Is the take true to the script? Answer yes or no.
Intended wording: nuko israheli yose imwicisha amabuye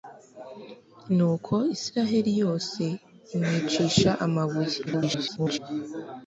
no